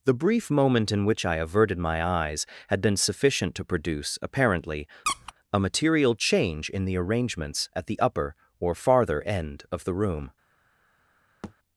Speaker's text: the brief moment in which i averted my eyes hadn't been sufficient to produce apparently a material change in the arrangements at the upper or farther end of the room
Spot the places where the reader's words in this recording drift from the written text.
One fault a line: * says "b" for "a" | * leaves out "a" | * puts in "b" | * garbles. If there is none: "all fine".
* says "had" for "hadn't"